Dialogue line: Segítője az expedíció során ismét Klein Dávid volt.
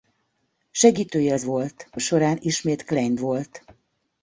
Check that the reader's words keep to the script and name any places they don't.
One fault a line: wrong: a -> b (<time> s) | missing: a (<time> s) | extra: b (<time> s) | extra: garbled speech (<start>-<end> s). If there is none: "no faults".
wrong: expedíció -> volt (1.4 s)
missing: Dávid (3.2 s)